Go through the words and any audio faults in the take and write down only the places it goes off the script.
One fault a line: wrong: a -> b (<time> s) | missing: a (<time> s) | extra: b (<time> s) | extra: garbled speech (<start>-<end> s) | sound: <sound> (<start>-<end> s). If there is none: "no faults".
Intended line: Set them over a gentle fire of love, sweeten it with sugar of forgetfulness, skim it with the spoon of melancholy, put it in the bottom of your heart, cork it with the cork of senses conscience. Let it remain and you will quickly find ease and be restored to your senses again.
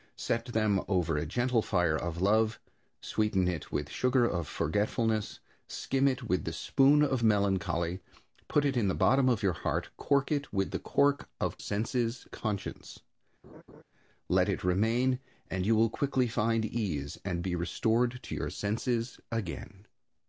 sound: laugh (13.4-13.8 s)